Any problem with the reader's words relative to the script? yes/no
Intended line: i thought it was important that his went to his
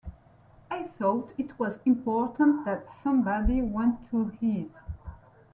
yes